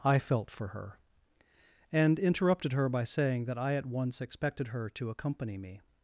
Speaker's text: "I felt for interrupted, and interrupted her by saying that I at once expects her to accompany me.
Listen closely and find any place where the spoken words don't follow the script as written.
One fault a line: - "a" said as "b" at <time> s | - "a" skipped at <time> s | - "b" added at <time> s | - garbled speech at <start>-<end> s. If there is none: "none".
- "interrupted" said as "her" at 0.7 s
- "expects" said as "expected" at 4.2 s